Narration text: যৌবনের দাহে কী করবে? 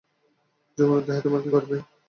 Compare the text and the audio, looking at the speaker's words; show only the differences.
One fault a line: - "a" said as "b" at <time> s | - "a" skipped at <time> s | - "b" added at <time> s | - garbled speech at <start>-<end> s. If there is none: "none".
- "তোমার" added at 1.2 s